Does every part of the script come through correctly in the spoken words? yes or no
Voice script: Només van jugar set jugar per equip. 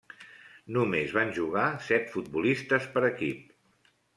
no